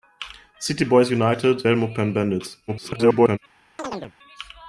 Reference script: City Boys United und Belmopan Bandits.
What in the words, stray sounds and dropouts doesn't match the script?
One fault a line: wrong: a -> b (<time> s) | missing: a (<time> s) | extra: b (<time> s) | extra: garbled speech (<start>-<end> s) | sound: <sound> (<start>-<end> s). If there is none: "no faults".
missing: und (1.7 s)
extra: garbled speech (2.7-3.4 s)
sound: chirp (3.8-4.1 s)